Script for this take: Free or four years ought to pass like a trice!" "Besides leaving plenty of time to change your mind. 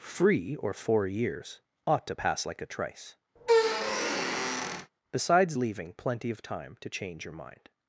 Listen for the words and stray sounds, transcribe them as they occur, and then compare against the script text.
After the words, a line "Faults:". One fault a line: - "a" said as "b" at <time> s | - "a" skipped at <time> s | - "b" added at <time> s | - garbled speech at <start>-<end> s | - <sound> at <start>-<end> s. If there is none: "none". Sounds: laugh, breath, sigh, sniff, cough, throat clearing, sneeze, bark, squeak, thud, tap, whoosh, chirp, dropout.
Free or four years ought to pass like a trice!" "Besides leaving plenty of time to change your mind.
Faults:
- squeak at 3.4-4.9 s